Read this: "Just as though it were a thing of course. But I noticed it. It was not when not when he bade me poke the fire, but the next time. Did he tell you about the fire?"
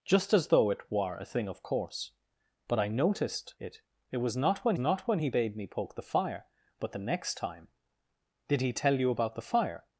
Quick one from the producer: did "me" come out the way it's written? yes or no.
yes